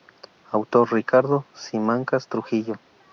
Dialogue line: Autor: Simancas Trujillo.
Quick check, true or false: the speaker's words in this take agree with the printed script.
false